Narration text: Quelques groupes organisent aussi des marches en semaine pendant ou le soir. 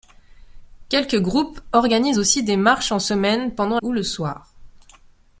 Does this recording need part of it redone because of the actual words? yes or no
no